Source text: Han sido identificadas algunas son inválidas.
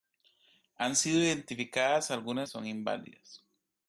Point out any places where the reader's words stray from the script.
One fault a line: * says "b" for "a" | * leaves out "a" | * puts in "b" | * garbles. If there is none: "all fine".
all fine